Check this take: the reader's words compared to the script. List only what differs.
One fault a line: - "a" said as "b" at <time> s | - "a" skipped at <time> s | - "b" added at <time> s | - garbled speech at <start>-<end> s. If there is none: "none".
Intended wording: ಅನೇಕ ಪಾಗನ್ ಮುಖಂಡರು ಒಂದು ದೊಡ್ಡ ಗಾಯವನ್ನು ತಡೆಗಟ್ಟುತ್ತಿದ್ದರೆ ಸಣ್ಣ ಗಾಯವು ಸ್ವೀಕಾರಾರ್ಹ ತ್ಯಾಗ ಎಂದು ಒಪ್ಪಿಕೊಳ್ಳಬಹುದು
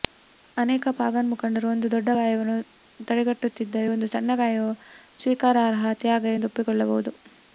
- "ಒಂದು" added at 3.9 s